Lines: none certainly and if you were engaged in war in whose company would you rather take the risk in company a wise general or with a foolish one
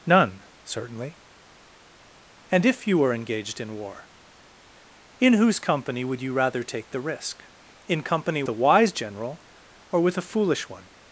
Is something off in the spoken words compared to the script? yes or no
no